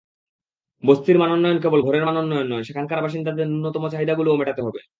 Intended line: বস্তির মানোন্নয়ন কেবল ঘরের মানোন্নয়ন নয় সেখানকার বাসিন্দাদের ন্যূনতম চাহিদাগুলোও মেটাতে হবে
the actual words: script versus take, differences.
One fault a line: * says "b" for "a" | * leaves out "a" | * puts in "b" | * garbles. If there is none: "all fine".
all fine